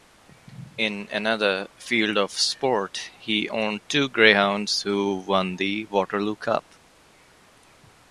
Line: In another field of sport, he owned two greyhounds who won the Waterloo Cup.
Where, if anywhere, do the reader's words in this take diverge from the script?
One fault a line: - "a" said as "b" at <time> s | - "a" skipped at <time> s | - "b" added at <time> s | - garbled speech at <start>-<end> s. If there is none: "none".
none